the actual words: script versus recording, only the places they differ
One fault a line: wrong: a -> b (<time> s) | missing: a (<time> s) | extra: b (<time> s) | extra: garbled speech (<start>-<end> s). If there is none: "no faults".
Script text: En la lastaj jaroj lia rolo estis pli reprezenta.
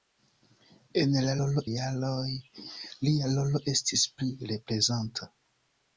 wrong: lastaj -> rolo (1.4 s)